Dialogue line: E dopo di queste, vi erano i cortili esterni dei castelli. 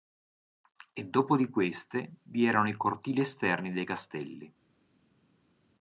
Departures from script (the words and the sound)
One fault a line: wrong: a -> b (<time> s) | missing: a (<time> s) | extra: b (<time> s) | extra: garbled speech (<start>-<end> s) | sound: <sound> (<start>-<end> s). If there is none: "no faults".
no faults